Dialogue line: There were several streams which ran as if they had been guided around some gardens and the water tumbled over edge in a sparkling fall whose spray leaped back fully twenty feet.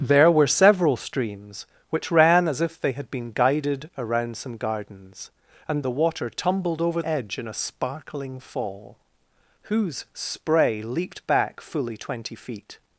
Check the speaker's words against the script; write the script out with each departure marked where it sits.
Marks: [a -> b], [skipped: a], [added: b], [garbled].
There were several streams which ran as if they had been guided around some gardens and the water tumbled over edge in a sparkling fall whose spray leaped back fully twenty feet.